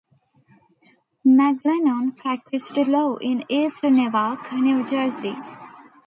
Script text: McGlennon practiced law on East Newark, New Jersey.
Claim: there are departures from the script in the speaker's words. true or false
true